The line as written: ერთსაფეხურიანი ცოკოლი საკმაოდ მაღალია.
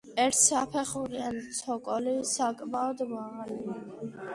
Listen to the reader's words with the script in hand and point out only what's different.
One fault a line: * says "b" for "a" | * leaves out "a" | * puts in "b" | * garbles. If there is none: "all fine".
all fine